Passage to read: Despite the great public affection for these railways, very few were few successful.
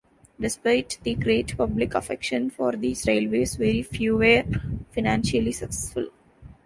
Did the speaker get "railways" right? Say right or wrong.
right